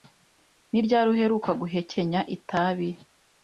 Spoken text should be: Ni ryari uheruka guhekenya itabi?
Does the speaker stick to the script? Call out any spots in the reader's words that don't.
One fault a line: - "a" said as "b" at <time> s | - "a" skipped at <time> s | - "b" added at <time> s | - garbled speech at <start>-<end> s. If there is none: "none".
none